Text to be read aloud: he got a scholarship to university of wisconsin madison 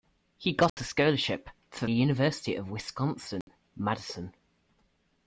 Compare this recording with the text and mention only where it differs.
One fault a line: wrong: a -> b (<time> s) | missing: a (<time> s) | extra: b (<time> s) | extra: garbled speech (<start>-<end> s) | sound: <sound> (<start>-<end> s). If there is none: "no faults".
sound: dropout (0.7-0.8 s)
sound: dropout (3.4-3.5 s)